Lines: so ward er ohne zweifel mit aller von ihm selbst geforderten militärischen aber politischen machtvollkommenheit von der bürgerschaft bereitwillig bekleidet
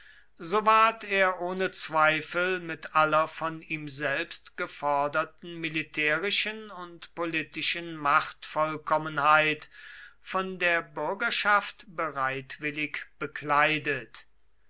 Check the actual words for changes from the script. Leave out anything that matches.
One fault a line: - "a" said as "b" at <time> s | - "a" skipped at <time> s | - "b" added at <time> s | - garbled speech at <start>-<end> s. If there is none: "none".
- "aber" said as "und" at 6.7 s